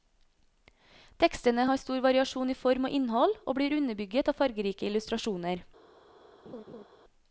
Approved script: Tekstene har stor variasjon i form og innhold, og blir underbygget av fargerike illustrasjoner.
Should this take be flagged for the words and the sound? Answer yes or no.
yes